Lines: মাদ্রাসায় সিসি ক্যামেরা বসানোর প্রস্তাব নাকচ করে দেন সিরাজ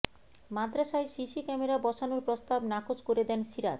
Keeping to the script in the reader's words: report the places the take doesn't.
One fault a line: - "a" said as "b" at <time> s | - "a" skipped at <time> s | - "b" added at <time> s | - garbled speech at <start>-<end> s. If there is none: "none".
none